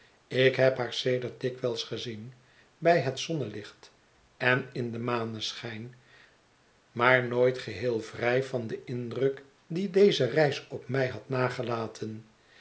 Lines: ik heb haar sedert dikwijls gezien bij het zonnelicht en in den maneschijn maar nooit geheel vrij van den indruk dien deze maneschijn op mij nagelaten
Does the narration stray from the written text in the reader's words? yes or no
yes